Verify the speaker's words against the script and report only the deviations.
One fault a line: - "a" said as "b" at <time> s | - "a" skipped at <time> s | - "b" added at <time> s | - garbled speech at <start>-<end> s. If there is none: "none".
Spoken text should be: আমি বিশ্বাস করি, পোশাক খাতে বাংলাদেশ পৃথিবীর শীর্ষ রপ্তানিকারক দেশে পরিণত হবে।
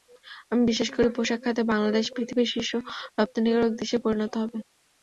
none